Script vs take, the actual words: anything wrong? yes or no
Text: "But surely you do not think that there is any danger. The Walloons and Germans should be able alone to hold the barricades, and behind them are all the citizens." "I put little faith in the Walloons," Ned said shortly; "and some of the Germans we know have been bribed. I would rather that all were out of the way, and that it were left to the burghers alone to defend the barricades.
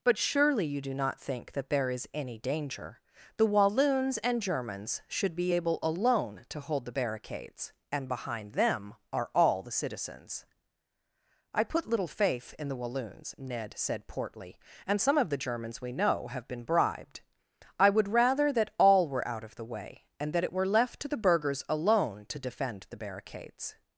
yes